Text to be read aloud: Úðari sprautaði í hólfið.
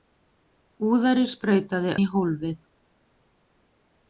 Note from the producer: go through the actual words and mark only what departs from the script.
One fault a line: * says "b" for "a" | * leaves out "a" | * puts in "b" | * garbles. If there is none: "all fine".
all fine